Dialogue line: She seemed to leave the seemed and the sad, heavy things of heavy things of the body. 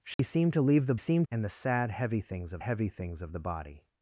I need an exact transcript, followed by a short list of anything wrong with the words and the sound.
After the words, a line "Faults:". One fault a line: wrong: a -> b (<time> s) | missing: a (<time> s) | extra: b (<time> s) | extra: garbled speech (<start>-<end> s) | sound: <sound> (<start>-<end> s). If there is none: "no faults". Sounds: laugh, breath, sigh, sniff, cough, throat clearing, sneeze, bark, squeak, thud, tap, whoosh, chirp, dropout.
She seemed to leave the seemed and the sad, heavy things of heavy things of the body.
Faults:
sound: dropout (0.1-0.2 s)